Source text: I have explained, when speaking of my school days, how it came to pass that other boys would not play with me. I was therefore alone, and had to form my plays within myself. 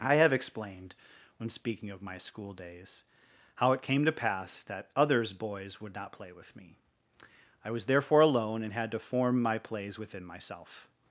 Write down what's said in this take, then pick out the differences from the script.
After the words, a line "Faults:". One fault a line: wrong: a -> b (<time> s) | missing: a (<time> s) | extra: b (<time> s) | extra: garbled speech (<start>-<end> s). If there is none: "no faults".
I have explained, when speaking of my school days, how it came to pass that others boys would not play with me. I was therefore alone, and had to form my plays within myself.
Faults:
wrong: other -> others (5.0 s)